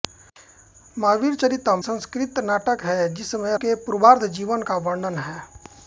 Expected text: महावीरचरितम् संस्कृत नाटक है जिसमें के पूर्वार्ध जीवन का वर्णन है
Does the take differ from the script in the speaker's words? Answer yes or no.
no